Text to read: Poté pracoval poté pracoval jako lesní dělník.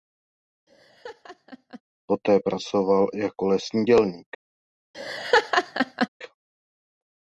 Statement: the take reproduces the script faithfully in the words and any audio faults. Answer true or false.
false